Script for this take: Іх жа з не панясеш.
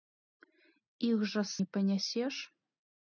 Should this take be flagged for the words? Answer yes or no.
no